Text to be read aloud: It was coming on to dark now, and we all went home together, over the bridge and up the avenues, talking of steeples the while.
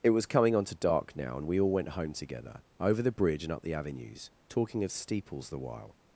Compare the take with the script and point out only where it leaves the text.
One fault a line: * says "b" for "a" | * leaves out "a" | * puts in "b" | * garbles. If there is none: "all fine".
all fine